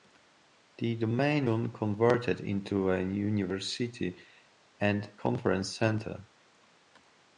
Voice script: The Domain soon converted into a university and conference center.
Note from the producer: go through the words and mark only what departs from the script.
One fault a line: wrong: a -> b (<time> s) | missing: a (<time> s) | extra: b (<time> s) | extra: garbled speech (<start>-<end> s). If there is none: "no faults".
no faults